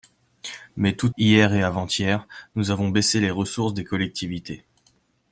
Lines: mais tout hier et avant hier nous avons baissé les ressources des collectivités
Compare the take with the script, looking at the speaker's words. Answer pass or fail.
pass